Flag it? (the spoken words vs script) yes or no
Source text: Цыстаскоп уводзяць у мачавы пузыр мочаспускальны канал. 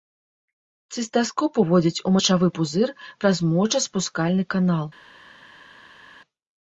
yes